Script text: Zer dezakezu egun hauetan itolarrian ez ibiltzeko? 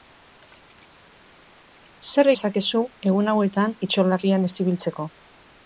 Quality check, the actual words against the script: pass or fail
pass